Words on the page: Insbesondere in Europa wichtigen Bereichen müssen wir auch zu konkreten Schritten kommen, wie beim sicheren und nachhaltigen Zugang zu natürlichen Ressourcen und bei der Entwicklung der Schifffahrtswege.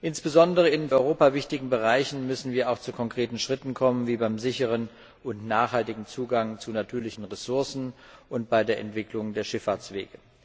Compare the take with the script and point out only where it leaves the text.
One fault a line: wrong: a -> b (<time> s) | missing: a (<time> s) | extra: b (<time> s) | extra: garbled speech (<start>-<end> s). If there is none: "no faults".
no faults